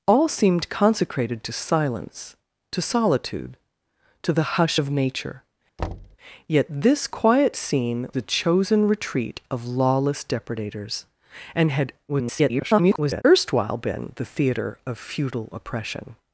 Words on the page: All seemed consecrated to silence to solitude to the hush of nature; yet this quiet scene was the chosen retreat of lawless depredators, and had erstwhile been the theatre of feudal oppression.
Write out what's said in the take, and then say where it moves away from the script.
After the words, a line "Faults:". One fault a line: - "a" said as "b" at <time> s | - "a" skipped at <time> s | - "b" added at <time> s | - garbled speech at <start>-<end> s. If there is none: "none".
All seemed consecrated to silence to solitude to the hush of nature; yet this quiet scene the chosen retreat of lawless depredators, and had [garbled] erstwhile been the theatre of feudal oppression.
Faults:
- "was" skipped at 8.1 s
- garbled speech at 12.1-13.2 s